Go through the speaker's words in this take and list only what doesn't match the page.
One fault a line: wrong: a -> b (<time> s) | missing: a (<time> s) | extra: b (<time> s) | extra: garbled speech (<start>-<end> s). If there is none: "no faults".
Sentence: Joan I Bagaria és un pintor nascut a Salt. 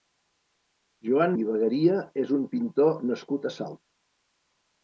no faults